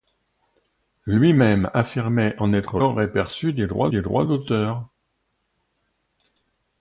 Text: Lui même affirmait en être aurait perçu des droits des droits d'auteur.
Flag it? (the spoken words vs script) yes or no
no